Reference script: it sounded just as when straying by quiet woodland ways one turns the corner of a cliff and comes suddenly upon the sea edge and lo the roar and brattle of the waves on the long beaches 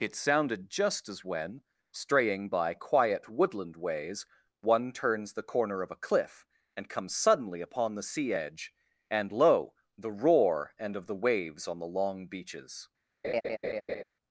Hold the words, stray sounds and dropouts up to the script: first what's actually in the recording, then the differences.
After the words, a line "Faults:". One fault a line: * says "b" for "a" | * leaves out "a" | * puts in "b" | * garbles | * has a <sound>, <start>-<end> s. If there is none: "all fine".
it sounded just as when straying by quiet woodland ways one turns the corner of a cliff and comes suddenly upon the sea edge and lo the roar and of the waves on the long beaches
Faults:
* leaves out "brattle"
* has a laugh, 13.2-14.0 s